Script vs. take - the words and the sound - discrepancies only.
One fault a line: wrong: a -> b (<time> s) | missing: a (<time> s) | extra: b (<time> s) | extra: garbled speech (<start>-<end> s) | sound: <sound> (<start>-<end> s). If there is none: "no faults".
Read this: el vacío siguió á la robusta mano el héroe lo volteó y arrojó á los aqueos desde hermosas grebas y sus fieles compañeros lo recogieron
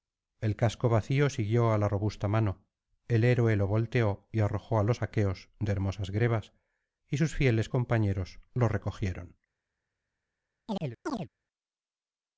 extra: casco (0.6 s)
wrong: desde -> de (5.6 s)
sound: chirp (10.7-11.3 s)